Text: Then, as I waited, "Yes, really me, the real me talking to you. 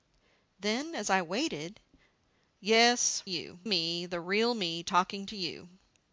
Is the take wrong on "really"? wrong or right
wrong